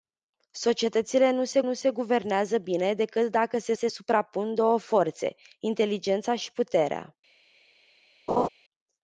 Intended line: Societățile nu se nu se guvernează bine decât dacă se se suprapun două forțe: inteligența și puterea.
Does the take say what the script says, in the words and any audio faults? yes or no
no